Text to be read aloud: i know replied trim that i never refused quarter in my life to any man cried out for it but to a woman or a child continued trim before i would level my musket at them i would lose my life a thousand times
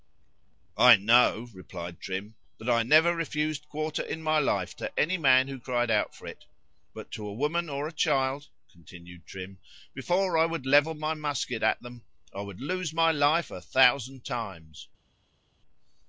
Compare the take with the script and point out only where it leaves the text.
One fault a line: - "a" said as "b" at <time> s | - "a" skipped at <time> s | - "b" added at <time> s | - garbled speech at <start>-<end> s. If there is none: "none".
- "who" added at 5.5 s